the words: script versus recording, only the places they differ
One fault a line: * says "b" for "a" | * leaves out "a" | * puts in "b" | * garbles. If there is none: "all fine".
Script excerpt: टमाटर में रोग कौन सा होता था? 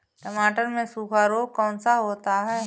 * puts in "सूखा"
* says "है" for "था"